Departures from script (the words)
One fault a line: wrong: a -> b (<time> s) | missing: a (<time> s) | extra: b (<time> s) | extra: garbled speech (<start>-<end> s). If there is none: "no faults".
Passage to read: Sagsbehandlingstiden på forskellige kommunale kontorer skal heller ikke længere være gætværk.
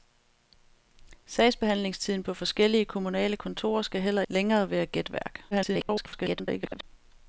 missing: ikke (4.2 s)
extra: garbled speech (5.5-6.8 s)